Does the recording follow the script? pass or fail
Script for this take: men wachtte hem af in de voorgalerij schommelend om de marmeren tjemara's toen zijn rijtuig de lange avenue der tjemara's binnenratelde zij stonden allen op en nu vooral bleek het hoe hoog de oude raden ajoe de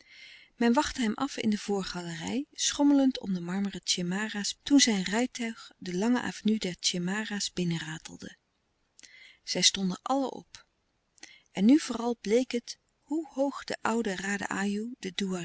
pass